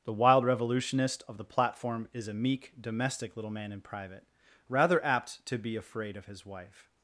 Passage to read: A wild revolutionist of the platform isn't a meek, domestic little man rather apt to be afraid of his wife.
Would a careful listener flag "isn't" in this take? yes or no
yes